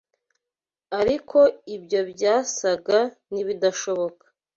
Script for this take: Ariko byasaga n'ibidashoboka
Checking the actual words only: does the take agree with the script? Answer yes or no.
no